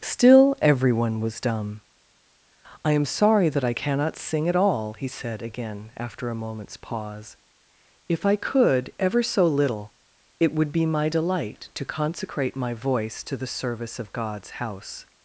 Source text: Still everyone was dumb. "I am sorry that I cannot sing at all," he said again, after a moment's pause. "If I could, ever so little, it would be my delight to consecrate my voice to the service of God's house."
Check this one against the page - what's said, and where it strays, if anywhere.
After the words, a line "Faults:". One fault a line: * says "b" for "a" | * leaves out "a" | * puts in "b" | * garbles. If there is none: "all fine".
Still everyone was dumb. "I am sorry that I cannot sing at all," he said again, after a moment's pause. "If I could, ever so little, it would be my delight to consecrate my voice to the service of God's house."
Faults:
all fine